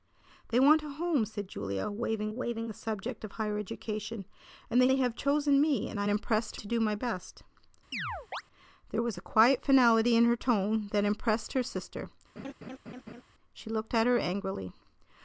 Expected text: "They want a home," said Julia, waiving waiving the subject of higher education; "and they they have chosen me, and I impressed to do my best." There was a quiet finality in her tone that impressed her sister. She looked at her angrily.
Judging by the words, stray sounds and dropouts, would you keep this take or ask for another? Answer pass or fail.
fail